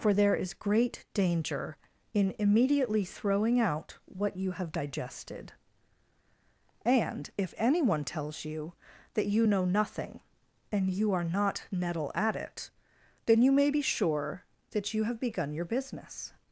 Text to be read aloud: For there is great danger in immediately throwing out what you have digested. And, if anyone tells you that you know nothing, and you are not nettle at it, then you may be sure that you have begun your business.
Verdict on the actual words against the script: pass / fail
pass